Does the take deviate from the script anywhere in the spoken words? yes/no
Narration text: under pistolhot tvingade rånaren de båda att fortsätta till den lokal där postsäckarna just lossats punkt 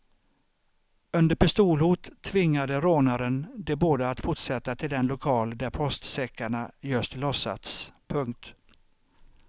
no